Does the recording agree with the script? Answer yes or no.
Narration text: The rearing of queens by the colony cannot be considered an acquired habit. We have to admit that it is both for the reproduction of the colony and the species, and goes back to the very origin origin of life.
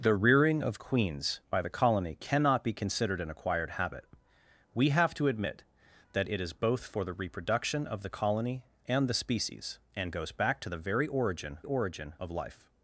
yes